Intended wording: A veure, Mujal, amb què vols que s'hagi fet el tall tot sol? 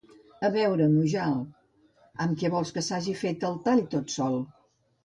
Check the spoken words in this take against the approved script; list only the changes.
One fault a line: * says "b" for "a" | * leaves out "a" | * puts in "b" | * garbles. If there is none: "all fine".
all fine